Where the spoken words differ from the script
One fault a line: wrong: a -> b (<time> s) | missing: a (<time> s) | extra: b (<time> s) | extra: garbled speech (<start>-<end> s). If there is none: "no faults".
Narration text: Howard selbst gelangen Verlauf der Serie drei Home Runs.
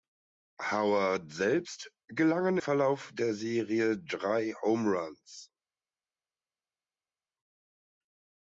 no faults